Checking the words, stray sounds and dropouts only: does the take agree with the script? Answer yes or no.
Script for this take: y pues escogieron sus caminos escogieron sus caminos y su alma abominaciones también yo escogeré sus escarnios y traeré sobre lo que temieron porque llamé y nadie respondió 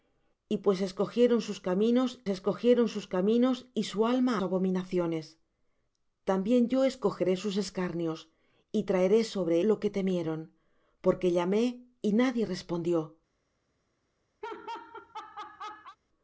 no